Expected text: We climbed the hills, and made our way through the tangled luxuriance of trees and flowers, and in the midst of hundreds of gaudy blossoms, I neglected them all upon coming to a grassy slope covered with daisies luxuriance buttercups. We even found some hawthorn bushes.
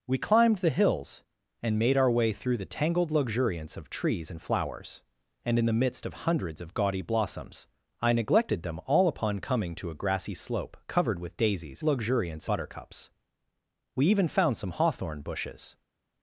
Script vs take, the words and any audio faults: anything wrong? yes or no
no